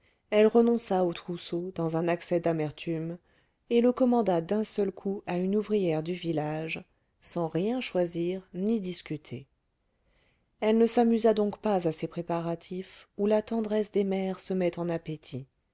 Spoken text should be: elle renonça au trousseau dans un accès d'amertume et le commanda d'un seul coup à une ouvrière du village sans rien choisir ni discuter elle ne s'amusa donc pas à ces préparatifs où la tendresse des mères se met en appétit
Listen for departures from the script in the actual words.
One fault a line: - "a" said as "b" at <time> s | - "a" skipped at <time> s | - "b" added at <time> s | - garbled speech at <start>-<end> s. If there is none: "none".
none